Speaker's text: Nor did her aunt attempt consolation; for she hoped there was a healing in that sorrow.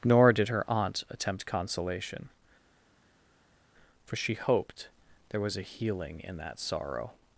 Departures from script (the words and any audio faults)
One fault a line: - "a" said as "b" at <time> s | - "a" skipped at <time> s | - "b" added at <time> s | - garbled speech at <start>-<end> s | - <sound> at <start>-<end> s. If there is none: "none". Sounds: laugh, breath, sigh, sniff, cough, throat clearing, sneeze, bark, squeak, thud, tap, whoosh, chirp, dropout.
none